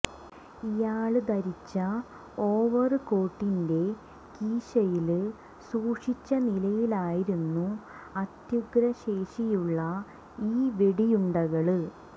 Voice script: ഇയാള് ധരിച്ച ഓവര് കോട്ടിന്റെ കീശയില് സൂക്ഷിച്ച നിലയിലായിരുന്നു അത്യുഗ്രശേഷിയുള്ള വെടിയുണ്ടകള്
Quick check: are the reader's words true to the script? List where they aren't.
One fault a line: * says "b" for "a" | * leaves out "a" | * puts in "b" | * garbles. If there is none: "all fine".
* puts in "ഈ"